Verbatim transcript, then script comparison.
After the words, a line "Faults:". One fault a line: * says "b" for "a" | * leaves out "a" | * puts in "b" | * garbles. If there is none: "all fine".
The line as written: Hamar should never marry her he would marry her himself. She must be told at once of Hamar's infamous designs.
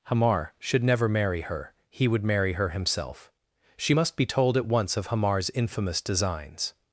Hamar should never marry her he would marry her himself. She must be told at once of Hamar's infamous designs.
Faults:
all fine